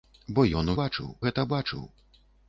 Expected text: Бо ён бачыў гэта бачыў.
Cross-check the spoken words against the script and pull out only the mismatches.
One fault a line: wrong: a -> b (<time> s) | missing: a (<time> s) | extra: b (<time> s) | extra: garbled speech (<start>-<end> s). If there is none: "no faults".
no faults